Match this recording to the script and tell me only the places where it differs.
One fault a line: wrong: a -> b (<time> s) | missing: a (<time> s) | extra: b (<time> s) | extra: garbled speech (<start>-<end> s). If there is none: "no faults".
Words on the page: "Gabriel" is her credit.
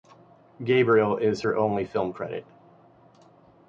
extra: only film (1.6 s)